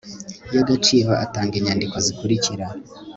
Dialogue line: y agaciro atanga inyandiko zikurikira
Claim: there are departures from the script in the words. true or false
false